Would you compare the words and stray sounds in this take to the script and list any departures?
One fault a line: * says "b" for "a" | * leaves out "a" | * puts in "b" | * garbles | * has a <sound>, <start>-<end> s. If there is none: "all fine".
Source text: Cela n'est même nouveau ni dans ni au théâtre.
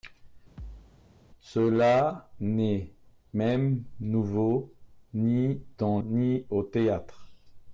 * has a thud, 0.6-1.0 s